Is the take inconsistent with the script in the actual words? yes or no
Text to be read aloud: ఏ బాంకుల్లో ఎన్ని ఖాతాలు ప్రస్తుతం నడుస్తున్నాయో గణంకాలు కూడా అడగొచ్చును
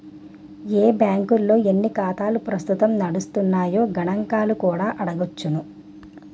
no